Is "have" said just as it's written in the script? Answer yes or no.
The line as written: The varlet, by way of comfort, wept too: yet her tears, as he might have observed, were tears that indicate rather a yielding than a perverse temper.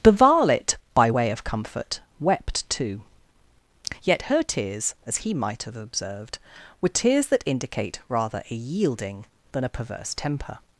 yes